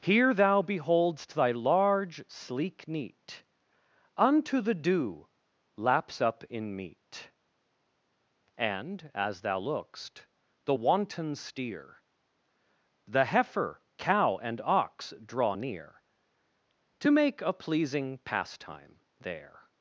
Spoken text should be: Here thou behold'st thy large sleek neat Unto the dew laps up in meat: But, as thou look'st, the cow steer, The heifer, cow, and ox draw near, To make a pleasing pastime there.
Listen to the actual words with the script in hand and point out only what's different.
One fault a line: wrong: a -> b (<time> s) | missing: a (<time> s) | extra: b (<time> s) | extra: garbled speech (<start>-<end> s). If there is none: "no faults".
wrong: But -> And (8.6 s)
wrong: cow -> wanton (10.7 s)